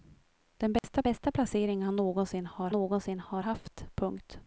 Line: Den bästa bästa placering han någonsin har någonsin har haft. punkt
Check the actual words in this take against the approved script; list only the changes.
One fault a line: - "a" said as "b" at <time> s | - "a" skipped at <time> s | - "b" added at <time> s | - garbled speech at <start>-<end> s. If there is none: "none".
none